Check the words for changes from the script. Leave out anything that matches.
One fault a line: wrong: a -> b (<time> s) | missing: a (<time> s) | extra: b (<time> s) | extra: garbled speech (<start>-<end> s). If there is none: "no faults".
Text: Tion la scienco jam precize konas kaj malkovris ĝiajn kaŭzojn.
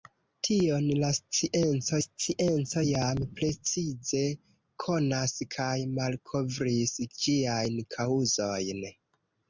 extra: scienco (2.0 s)